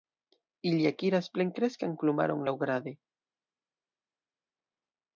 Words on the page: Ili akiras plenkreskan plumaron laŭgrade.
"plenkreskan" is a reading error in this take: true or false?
false